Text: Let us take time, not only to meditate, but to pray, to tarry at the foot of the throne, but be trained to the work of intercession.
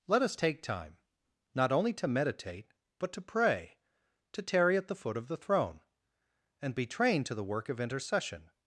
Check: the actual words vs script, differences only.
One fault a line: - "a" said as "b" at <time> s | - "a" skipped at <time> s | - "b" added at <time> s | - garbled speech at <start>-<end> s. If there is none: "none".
- "but" said as "and" at 6.6 s